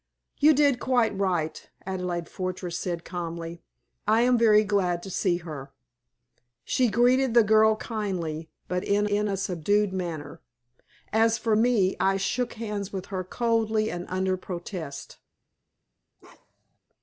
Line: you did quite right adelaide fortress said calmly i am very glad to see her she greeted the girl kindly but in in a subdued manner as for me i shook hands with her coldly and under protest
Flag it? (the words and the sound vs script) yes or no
yes